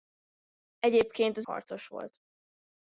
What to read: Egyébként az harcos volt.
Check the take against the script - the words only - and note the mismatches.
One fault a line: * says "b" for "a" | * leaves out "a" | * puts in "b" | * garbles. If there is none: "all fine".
all fine